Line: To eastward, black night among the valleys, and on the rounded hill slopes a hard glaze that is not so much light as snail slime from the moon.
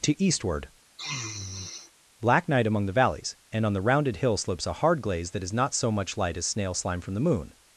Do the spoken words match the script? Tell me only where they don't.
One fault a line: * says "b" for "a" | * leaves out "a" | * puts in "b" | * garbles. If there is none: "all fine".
all fine